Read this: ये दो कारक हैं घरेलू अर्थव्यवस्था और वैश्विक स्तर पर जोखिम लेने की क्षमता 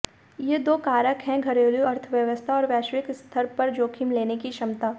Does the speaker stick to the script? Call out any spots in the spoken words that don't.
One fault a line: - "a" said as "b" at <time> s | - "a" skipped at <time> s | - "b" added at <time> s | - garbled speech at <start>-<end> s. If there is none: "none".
none